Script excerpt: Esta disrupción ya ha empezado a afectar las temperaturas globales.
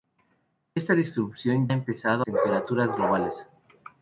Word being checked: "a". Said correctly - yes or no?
no